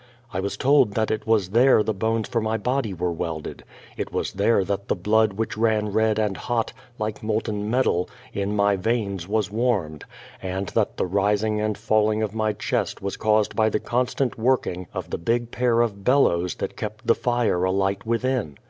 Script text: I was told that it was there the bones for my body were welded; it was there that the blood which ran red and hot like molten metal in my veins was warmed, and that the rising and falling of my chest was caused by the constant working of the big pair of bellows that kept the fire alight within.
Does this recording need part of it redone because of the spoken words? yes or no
no